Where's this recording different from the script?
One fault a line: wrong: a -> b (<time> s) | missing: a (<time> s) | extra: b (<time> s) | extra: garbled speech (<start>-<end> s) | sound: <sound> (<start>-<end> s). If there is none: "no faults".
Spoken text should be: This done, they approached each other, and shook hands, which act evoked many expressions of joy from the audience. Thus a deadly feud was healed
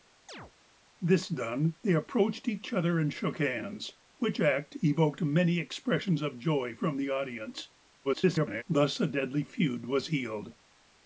sound: chirp (0.3-0.5 s)
extra: garbled speech (8.0-8.6 s)